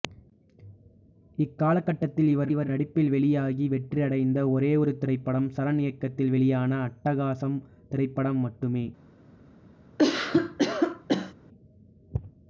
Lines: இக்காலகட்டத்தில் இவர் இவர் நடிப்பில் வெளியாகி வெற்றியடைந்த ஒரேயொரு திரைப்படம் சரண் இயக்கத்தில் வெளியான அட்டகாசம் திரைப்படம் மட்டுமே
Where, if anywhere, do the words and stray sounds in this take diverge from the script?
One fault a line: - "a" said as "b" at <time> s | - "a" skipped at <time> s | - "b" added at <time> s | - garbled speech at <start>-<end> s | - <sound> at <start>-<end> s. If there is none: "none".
- cough at 10.0-11.3 s